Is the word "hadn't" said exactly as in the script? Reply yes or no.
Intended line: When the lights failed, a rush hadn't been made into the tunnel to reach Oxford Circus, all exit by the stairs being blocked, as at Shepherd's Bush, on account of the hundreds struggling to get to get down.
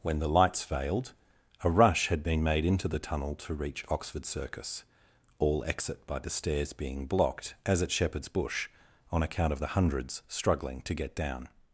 no